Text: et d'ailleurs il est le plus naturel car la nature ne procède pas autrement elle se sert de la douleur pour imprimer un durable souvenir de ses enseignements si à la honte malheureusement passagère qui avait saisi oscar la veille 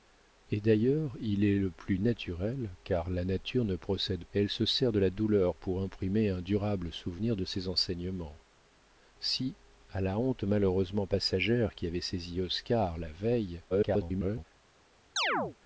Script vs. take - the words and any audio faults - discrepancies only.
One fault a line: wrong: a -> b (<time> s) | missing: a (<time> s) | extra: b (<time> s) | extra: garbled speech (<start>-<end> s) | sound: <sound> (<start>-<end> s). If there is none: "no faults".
missing: pas autrement (4.2 s)
extra: garbled speech (13.7-14.4 s)
sound: chirp (15.2-15.6 s)